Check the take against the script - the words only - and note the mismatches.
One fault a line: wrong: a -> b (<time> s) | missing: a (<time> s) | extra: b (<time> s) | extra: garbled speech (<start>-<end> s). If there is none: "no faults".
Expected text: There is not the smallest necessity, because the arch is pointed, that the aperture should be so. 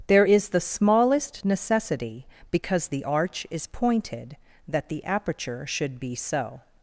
missing: not (0.5 s)